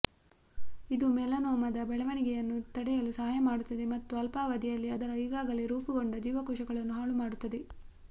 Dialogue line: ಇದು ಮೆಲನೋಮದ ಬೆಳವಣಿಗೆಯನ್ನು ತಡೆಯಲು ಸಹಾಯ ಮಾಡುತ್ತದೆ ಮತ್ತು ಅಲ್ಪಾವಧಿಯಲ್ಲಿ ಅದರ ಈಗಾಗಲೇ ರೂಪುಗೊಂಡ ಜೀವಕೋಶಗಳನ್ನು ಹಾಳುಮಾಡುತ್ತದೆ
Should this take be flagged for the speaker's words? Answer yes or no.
no